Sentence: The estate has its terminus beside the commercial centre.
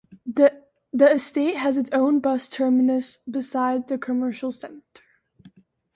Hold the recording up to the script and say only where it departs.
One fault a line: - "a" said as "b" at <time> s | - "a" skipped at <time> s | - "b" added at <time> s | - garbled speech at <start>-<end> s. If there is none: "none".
- "own bus" added at 1.9 s